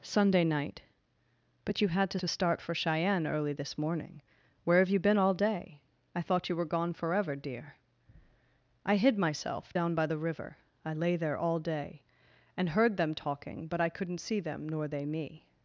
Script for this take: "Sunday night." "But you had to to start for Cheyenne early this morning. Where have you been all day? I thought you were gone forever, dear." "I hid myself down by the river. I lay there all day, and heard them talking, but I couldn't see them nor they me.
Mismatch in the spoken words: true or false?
false